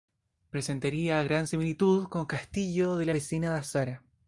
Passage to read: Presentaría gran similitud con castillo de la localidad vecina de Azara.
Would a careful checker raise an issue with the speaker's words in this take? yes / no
yes